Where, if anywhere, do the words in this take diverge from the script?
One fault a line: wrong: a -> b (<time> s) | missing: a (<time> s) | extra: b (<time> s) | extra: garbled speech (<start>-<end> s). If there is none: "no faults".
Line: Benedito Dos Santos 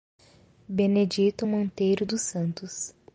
extra: Monteiro (1.4 s)